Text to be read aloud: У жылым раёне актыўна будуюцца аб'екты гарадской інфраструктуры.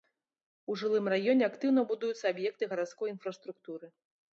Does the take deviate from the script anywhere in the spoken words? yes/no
no